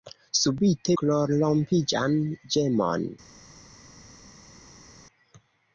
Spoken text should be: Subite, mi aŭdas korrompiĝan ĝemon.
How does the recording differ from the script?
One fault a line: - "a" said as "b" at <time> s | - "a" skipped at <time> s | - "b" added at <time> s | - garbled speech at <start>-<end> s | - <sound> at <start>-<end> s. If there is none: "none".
- "mi aŭdas" skipped at 0.9 s